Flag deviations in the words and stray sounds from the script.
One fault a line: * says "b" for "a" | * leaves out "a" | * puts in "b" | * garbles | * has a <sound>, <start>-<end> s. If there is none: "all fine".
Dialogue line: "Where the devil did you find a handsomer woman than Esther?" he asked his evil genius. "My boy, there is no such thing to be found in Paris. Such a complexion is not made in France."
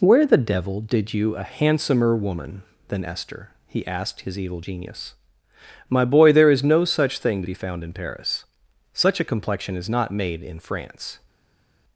* leaves out "find"